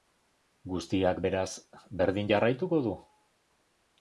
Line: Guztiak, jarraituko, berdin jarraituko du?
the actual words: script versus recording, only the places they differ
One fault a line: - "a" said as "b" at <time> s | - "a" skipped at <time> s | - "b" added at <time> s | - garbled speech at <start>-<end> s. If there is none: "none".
- "jarraituko" said as "beraz" at 1.2 s